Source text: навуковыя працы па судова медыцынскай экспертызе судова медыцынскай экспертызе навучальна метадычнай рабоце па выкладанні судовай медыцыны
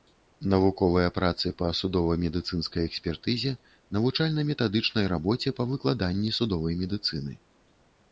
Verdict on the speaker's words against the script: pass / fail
fail